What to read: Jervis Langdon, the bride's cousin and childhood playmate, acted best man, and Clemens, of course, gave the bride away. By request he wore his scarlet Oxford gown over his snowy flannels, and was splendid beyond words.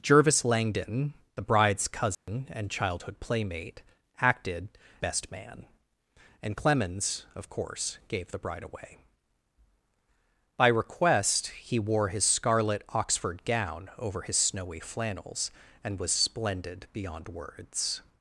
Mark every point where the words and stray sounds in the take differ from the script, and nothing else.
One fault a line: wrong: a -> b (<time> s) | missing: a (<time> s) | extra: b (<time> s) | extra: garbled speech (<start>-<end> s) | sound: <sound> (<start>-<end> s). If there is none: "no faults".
sound: dropout (2.1-2.3 s)